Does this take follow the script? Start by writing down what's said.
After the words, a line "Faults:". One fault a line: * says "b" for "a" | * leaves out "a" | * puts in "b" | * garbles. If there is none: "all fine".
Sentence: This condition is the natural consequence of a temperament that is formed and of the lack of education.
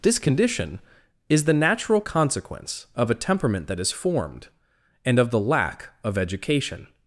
This condition is the natural consequence of a temperament that is formed and of the lack of education.
Faults:
all fine